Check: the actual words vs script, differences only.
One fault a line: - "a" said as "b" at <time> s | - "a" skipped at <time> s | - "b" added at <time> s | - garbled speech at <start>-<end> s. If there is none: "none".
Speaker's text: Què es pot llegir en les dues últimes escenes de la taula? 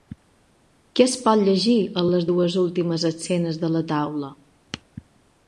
none